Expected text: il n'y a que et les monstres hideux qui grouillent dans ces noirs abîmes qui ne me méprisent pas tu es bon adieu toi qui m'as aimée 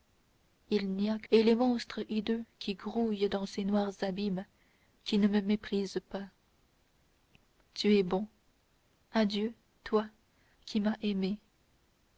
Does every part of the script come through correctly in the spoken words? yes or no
yes